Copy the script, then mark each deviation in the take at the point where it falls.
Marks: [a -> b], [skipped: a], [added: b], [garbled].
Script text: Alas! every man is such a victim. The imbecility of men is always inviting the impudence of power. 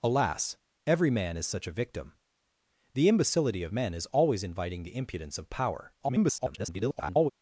Alas! every man is such a victim. The imbecility of men is always inviting the impudence of power. [garbled]